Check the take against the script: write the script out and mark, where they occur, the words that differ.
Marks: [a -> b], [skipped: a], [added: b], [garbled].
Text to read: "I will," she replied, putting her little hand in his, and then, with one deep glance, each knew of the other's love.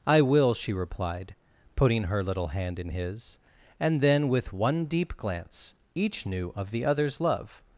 "I will," she replied, putting her little hand in his, and then, with one deep glance, each knew of the other's love.